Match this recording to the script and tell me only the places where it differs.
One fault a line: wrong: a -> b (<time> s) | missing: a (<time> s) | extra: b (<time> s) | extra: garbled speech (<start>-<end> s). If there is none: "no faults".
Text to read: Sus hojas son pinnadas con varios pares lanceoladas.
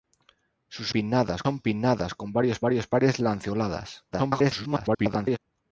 wrong: hojas -> pinnadas (0.9 s)
extra: varios (2.6 s)
extra: garbled speech (4.1-5.4 s)